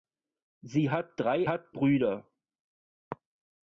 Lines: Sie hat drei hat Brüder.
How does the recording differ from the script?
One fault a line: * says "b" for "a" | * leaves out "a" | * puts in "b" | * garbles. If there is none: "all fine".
all fine